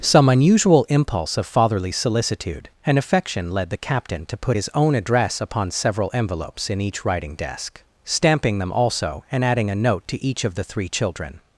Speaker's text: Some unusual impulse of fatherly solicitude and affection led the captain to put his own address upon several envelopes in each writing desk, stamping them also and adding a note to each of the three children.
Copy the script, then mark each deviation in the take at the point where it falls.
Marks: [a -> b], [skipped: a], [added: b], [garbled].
Some unusual impulse of fatherly solicitude and affection led the captain to put his own address upon several envelopes in each writing desk, stamping them also and adding a note to each of the three children.